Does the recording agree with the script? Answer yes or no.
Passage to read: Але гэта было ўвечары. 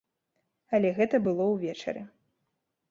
yes